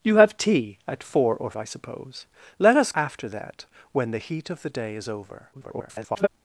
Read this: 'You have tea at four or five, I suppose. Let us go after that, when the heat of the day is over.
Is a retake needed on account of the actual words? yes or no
yes